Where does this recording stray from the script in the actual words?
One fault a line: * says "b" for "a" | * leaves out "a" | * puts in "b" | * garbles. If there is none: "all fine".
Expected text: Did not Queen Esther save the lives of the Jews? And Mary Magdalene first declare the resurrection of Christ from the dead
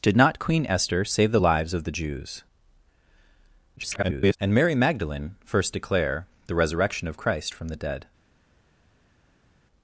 * garbles